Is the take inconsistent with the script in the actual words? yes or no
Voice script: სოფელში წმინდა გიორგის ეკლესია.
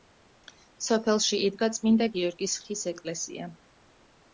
yes